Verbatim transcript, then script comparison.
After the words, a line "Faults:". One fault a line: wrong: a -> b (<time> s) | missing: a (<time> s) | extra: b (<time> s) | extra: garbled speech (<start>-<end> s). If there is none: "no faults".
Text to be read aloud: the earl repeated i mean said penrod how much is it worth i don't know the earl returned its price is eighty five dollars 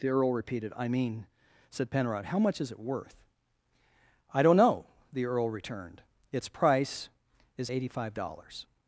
the earl repeated i mean said penrod how much is it worth i don't know the earl returned its price is eighty five dollars
Faults:
no faults